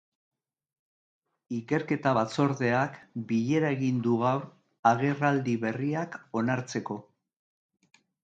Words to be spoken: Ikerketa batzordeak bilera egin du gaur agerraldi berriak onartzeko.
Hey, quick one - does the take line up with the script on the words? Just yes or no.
yes